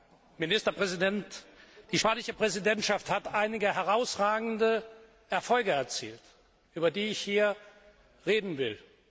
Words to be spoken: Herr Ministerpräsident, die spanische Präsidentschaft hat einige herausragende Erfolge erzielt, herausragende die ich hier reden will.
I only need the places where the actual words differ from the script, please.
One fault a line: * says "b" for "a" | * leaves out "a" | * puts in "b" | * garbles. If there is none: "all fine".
* says "über" for "herausragende"